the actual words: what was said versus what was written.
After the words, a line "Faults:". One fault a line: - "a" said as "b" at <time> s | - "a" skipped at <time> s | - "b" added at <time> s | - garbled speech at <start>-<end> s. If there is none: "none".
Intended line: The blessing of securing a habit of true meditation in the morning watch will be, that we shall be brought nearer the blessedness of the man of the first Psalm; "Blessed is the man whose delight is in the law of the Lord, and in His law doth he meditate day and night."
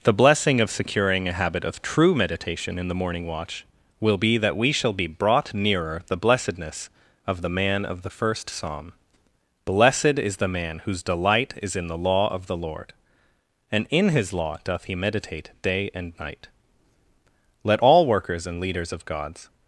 The blessing of securing a habit of true meditation in the morning watch will be, that we shall be brought nearer the blessedness of the man of the first Psalm; "Blessed is the man whose delight is in the law of the Lord, and in His law doth he meditate day and night." Let all workers and leaders of God's
Faults:
- "Let all workers and leaders of God's" added at 17.6 s